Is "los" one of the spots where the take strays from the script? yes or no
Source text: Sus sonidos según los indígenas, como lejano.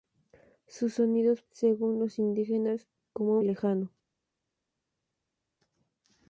no